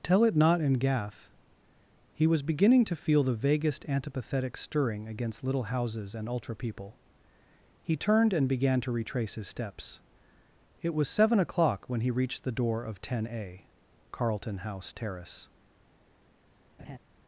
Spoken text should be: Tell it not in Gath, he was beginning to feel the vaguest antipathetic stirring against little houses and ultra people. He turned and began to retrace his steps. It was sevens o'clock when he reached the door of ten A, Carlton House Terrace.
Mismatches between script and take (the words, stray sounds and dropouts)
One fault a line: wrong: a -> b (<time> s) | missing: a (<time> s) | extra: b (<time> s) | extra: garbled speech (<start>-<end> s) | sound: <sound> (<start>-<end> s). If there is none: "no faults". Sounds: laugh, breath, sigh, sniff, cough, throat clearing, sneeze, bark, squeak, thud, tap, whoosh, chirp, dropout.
wrong: sevens -> seven (11.1 s)
sound: laugh (16.8-17.0 s)